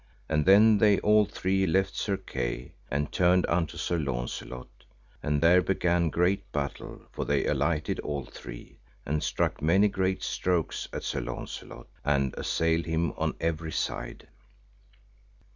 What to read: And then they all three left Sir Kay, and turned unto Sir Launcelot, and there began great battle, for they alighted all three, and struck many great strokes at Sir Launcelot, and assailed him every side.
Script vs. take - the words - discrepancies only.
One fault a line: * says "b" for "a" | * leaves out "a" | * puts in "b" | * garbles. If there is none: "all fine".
* puts in "on"